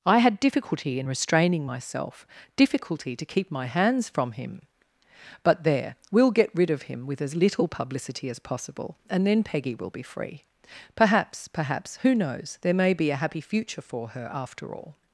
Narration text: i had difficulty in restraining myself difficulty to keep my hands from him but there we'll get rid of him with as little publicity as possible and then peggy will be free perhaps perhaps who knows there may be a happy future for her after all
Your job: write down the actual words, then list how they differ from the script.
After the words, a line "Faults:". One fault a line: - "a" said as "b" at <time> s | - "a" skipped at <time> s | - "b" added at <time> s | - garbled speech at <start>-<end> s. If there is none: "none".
i had difficulty in restraining myself difficulty to keep my hands from him but there we'll get rid of him with as little publicity as possible and then peggy will be free perhaps perhaps who knows there may be a happy future for her after all
Faults:
none